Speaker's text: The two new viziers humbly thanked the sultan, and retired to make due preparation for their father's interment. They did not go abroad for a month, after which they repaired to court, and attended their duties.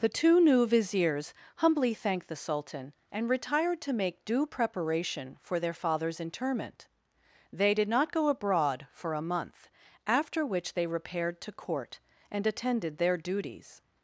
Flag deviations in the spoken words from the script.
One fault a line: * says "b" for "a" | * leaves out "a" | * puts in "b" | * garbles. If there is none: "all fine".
all fine